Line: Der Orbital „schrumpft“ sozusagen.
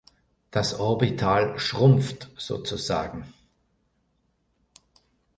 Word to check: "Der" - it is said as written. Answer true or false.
false